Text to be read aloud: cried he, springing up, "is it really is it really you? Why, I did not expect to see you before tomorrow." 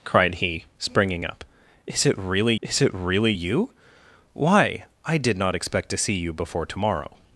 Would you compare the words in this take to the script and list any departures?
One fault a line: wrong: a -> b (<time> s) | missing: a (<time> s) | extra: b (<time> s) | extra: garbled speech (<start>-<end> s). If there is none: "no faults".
no faults